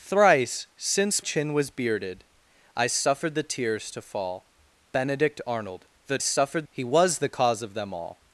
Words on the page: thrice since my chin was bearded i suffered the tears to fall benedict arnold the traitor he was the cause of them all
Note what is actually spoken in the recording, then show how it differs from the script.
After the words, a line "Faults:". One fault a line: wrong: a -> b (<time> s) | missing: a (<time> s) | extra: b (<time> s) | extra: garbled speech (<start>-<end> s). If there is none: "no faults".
thrice since chin was bearded i suffered the tears to fall benedict arnold the suffered he was the cause of them all
Faults:
missing: my (1.2 s)
wrong: traitor -> suffered (6.2 s)